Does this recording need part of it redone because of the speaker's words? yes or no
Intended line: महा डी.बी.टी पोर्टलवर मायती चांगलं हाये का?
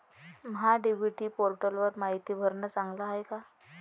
yes